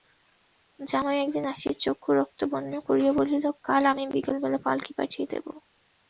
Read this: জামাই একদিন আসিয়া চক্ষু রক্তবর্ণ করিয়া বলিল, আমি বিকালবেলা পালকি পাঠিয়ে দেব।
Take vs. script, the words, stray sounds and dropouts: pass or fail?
fail